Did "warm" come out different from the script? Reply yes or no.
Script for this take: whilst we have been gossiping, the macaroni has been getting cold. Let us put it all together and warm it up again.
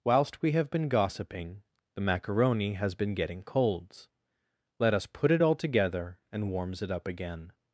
yes